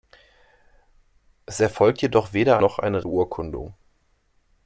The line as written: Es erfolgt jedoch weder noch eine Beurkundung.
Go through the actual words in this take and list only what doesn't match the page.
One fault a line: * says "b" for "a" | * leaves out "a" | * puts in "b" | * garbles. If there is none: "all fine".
all fine